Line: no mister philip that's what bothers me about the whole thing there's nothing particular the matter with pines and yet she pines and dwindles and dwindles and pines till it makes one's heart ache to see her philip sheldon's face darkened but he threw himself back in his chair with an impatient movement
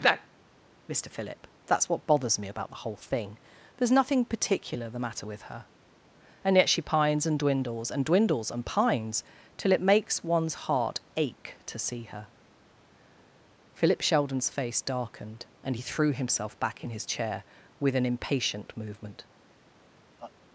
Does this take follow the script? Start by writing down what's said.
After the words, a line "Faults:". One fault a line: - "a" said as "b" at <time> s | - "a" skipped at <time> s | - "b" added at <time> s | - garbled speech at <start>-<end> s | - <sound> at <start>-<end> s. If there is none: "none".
no mister philip that's what bothers me about the whole thing there's nothing particular the matter with her and yet she pines and dwindles and dwindles and pines till it makes one's heart ache to see her philip sheldon's face darkened and he threw himself back in his chair with an impatient movement
Faults:
- "pines" said as "her" at 5.4 s
- "but" said as "and" at 15.6 s
- laugh at 20.2-20.3 s